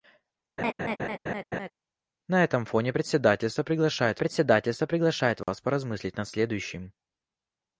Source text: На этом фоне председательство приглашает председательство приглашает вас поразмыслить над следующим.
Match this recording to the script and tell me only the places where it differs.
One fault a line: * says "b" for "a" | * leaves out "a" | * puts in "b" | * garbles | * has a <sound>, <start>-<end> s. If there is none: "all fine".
* has a laugh, 0.6-1.7 s
* has a dropout, 5.4-5.5 s